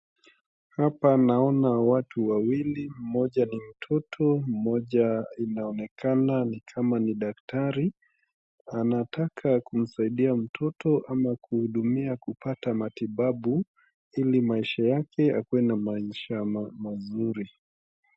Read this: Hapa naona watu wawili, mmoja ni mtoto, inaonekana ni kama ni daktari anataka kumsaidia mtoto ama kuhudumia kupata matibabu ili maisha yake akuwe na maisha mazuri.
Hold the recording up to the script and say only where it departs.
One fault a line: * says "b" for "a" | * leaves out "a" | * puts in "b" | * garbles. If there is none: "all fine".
* puts in "mmoja"